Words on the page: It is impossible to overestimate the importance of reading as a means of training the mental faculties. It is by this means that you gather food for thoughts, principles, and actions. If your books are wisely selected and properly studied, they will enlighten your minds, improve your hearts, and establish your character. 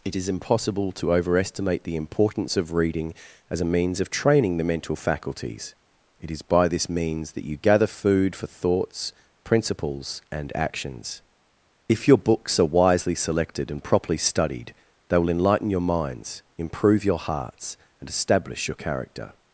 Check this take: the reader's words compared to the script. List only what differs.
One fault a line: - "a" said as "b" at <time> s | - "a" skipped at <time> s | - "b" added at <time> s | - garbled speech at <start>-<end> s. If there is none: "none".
none